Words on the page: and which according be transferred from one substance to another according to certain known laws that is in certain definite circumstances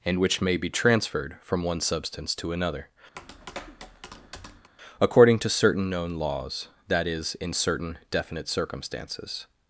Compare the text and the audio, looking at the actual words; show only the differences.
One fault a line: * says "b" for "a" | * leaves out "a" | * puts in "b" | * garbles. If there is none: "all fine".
* says "may" for "according"